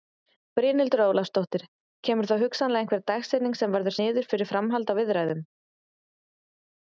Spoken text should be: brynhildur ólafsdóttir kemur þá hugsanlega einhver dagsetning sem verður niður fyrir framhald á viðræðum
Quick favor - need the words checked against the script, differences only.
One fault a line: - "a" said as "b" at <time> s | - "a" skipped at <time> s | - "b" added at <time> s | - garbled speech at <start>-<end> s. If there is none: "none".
none